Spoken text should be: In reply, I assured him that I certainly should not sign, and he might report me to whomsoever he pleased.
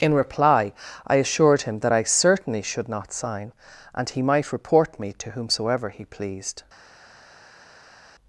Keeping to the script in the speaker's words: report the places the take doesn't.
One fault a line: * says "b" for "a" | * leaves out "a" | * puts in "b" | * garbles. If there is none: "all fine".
all fine